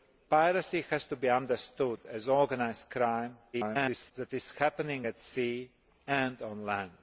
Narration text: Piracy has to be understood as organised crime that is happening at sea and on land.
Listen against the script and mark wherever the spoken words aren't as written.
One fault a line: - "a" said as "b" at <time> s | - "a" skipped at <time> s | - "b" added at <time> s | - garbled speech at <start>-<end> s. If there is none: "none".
- garbled speech at 3.5-4.1 s